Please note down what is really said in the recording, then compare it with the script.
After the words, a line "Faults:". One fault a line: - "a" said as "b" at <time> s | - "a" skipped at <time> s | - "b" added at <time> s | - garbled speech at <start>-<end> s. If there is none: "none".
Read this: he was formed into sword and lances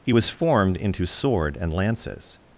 he was formed into sword and lances
Faults:
none